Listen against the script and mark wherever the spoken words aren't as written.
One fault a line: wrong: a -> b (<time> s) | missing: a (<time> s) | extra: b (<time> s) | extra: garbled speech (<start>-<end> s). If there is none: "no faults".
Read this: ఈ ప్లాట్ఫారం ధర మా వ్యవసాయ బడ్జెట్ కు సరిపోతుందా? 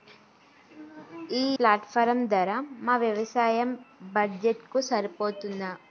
no faults